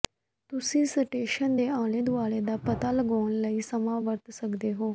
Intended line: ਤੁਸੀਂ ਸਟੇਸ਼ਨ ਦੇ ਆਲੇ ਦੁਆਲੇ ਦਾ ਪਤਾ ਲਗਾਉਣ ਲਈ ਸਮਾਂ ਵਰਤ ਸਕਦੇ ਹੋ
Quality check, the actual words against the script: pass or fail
pass